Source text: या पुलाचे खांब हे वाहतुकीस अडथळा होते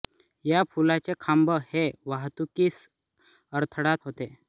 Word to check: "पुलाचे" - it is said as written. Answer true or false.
true